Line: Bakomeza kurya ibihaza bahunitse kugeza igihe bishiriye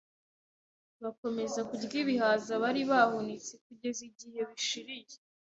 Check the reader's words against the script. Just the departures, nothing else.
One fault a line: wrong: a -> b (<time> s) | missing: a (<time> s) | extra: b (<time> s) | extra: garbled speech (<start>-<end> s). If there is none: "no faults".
extra: bari (2.6 s)